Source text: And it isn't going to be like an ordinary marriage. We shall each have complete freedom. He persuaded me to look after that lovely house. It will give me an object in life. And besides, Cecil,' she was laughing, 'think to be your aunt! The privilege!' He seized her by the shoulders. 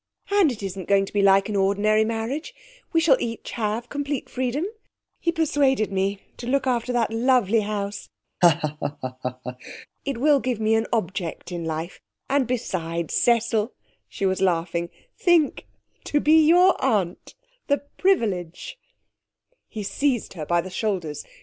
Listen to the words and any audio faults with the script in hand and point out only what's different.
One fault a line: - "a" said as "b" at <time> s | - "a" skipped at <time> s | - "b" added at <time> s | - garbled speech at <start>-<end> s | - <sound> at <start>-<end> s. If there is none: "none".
- laugh at 8.4-9.9 s